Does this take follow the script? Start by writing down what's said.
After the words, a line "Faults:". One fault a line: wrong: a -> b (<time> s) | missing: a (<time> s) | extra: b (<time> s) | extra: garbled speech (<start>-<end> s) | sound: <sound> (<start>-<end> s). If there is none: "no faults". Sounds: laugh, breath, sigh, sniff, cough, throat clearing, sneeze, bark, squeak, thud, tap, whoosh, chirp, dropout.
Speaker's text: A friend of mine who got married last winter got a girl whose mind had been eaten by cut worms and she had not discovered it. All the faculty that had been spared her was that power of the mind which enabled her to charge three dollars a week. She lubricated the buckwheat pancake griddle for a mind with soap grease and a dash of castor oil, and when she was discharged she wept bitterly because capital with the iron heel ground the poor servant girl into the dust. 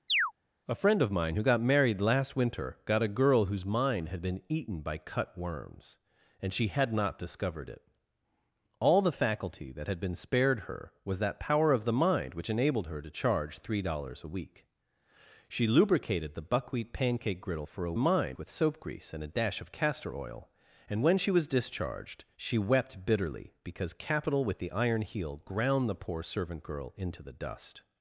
A friend of mine who got married last winter got a girl whose mind had been eaten by cut worms and she had not discovered it. All the faculty that had been spared her was that power of the mind which enabled her to charge three dollars a week. She lubricated the buckwheat pancake griddle for a mind with soap grease and a dash of castor oil, and when she was discharged she wept bitterly because capital with the iron heel ground the poor servant girl into the dust.
Faults:
sound: chirp (0.1-0.3 s)